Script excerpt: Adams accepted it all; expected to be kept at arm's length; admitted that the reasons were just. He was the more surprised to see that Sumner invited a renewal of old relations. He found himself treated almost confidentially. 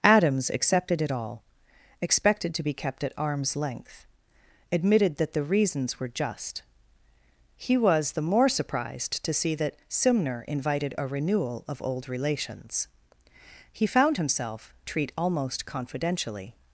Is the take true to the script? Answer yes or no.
no